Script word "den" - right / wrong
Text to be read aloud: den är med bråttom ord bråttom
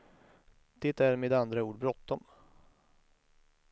wrong